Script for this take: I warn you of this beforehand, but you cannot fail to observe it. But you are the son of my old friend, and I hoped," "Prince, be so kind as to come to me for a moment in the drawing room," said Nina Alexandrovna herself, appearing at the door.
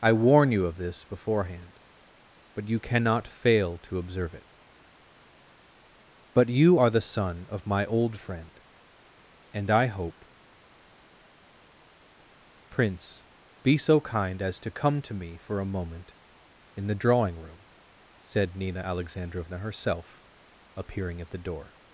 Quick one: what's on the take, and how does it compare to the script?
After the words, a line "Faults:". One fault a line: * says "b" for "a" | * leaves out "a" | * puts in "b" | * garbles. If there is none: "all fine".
I warn you of this beforehand, but you cannot fail to observe it. But you are the son of my old friend, and I hope," "Prince, be so kind as to come to me for a moment in the drawing room," said Nina Alexandrovna herself, appearing at the door.
Faults:
* says "hope" for "hoped"